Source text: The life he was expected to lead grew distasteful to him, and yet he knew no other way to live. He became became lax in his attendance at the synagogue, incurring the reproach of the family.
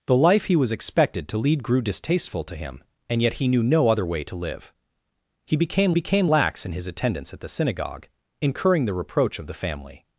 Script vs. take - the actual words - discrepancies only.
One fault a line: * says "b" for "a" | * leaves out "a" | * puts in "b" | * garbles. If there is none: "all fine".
all fine